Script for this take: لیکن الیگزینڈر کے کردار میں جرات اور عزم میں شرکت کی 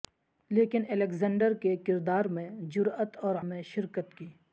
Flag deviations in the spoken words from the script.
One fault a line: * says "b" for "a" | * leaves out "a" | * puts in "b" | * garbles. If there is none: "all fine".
* leaves out "عزم"